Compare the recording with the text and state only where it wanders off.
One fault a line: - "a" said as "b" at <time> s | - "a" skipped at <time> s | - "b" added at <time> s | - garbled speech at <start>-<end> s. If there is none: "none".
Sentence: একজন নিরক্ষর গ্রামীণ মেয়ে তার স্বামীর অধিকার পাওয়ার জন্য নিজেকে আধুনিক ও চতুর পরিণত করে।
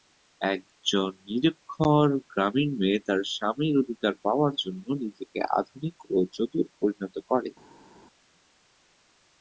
none